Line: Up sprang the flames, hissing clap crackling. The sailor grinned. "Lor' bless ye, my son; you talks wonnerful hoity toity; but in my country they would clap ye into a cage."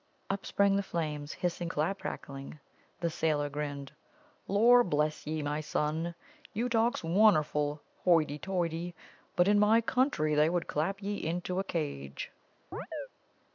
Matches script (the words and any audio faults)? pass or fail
fail